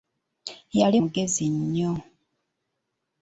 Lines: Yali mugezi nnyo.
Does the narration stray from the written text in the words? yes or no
no